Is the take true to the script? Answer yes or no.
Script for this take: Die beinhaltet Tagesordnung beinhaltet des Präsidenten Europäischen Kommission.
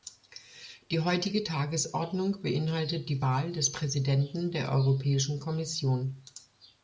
no